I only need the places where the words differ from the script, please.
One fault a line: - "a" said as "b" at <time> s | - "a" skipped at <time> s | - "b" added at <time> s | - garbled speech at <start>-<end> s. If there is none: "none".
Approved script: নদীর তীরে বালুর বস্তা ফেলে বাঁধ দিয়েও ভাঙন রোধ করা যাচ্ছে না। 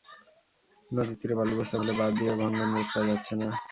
none